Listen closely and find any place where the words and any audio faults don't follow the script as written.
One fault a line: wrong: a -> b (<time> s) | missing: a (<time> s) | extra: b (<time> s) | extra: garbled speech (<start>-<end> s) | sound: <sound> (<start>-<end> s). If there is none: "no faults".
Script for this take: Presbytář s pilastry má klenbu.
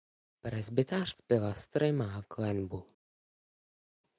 no faults